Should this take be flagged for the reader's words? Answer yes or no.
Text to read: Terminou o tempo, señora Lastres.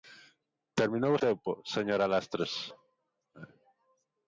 no